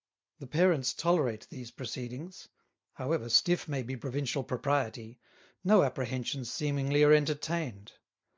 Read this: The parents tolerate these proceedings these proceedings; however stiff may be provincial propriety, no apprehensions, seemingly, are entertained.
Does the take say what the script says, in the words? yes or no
no